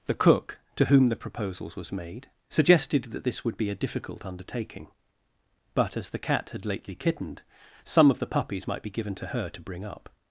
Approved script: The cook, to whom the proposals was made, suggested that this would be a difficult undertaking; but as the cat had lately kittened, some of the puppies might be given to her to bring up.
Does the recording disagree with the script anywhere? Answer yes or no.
no